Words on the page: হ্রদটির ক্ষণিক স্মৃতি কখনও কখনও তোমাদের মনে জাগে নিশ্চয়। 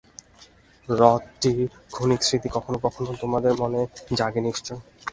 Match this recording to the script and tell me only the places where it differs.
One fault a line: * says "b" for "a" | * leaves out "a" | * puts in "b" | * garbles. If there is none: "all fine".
all fine